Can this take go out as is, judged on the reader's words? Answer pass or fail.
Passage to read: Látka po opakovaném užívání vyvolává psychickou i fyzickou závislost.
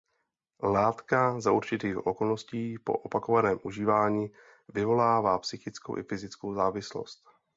fail